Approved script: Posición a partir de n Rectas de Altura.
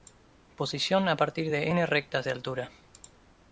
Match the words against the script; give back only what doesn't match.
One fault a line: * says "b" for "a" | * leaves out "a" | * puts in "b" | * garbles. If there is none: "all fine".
all fine